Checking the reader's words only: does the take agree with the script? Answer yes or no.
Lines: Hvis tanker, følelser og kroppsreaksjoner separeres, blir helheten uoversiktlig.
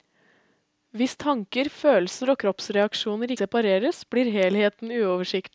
yes